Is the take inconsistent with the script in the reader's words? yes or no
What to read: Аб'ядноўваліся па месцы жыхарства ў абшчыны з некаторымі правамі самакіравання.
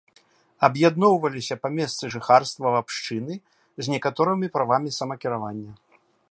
no